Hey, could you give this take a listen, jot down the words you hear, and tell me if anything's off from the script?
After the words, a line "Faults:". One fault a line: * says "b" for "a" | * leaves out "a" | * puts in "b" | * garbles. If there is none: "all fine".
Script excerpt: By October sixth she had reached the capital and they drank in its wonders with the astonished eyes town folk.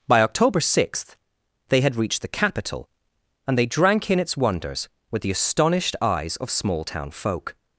By October sixth they had reached the capital and they drank in its wonders with the astonished eyes of small town folk.
Faults:
* says "they" for "she"
* puts in "of small"